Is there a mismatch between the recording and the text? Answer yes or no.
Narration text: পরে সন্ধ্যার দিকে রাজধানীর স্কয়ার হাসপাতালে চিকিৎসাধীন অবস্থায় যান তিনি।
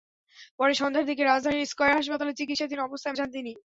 no